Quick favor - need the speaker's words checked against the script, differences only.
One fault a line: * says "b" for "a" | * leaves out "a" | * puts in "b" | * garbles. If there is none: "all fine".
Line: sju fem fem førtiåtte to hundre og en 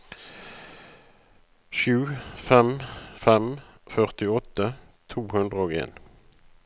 all fine